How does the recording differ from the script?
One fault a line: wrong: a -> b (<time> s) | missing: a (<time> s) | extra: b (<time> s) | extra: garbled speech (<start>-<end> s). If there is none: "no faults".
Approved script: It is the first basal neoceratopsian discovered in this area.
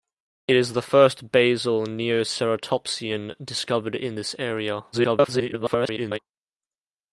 extra: garbled speech (4.9-6.2 s)